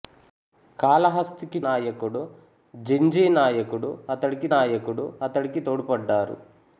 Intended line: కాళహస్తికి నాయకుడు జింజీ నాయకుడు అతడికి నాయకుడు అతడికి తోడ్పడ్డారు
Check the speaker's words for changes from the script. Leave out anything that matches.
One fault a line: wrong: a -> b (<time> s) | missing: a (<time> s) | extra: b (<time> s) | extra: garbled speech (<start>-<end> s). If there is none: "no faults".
no faults